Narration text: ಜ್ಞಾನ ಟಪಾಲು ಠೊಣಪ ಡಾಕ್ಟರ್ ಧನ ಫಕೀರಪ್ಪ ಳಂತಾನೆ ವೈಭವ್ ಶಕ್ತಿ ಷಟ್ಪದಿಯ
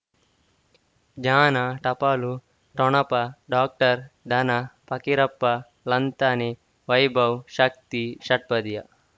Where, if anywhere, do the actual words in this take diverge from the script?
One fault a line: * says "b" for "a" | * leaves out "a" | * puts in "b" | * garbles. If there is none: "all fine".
all fine